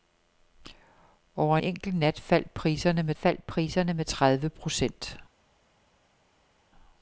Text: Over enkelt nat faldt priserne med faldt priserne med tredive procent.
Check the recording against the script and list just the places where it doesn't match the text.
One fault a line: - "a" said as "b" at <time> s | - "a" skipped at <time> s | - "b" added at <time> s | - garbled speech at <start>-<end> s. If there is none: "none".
none